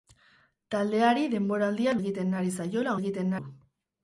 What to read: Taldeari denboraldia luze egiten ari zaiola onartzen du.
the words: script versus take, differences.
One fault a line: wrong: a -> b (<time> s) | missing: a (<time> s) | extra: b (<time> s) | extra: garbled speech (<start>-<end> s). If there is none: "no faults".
missing: luze (1.9 s)
wrong: onartzen -> egiten (3.0 s)